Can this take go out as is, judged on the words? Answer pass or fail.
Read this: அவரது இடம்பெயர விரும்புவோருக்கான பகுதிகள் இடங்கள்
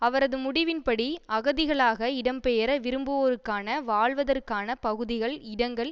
fail